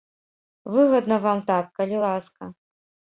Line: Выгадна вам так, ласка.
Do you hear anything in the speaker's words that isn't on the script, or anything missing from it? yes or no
yes